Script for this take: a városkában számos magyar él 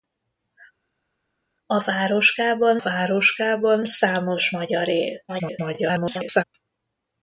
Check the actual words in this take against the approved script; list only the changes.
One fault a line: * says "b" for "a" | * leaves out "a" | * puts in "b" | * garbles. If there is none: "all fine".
* puts in "városkában"
* garbles